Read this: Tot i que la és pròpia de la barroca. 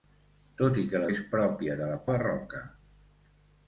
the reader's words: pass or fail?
pass